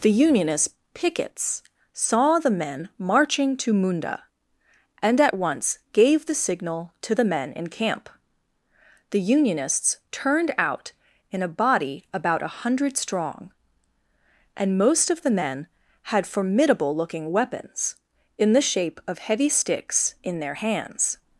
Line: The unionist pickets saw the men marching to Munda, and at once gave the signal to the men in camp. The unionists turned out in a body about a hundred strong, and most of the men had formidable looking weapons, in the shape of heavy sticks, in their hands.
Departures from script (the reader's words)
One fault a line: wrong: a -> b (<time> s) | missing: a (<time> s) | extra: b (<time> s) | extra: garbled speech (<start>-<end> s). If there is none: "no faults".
no faults